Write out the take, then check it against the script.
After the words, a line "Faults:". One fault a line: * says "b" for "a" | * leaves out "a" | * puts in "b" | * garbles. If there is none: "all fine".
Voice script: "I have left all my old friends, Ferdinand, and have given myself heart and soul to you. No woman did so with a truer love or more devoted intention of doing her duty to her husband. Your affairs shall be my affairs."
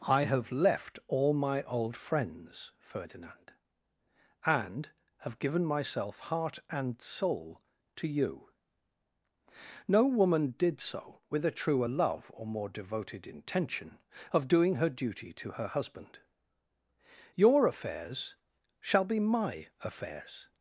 "I have left all my old friends, Ferdinand, and have given myself heart and soul to you. No woman did so with a truer love or more devoted intention of doing her duty to her husband. Your affairs shall be my affairs."
Faults:
all fine